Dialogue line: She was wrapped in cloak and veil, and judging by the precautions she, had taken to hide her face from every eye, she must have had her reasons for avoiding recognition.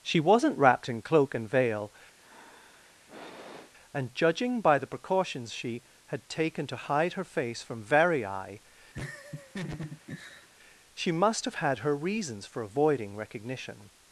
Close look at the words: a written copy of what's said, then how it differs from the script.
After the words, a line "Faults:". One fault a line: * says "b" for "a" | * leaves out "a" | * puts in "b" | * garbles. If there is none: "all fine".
She wasn't wrapped in cloak and veil, and judging by the precautions she, had taken to hide her face from very eye, she must have had her reasons for avoiding recognition.
Faults:
* says "wasn't" for "was"
* says "very" for "every"